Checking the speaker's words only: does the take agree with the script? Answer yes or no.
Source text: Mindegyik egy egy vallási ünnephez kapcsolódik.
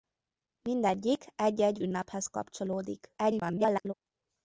no